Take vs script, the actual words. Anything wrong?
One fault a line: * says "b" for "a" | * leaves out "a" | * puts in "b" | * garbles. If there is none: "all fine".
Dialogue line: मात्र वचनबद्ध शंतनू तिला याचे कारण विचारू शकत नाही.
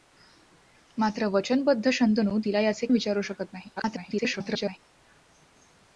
* leaves out "कारण"
* garbles